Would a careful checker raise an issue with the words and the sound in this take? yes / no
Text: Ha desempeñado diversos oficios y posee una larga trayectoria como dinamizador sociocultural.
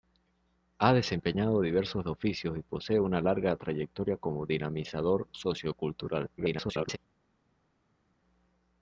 yes